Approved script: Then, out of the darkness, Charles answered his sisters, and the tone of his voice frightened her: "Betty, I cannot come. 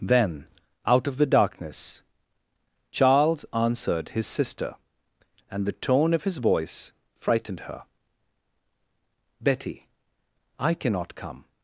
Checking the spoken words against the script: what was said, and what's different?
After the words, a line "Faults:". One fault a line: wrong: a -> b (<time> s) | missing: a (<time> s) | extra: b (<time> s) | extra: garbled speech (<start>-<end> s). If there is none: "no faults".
Then, out of the darkness, Charles answered his sister, and the tone of his voice frightened her: "Betty, I cannot come.
Faults:
wrong: sisters -> sister (4.2 s)